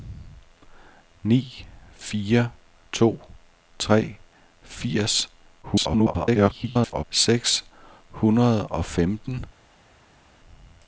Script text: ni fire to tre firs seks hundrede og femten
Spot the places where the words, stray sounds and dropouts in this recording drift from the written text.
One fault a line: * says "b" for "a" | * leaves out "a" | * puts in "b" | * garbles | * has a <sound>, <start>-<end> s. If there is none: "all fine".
* garbles